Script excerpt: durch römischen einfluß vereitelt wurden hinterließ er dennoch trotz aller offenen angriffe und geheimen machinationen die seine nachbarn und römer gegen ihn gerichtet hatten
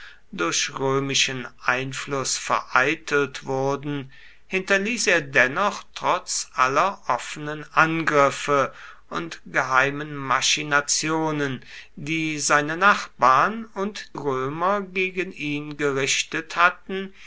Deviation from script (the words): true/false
false